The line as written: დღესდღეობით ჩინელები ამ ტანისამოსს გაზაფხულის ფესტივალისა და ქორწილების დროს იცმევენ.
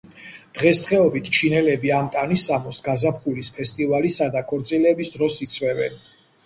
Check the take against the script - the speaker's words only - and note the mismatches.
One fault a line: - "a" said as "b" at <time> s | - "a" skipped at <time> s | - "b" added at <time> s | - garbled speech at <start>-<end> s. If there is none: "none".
none